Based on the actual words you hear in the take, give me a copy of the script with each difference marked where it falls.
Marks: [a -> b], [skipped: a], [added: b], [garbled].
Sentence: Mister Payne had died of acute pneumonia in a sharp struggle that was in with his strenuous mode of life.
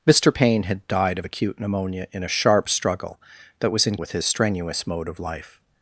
Mister Payne had died of acute pneumonia in a sharp struggle that was in with his strenuous mode of life.